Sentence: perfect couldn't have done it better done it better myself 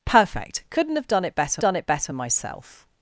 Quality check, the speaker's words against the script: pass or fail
pass